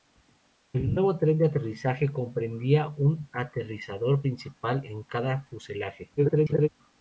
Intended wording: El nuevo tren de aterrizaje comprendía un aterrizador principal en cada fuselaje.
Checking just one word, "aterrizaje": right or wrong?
right